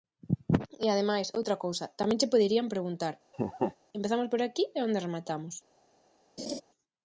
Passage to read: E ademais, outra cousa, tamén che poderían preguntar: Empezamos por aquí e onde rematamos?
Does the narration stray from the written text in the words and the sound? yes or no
yes